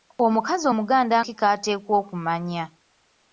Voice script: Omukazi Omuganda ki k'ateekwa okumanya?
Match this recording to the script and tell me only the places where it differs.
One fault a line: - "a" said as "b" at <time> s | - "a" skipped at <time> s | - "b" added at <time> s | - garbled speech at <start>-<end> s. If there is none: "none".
none